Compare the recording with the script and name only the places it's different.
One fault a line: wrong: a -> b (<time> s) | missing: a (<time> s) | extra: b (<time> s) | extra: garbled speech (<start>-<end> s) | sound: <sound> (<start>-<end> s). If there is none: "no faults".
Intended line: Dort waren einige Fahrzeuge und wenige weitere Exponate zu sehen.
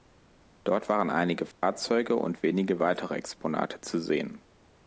sound: dropout (1.5-1.6 s)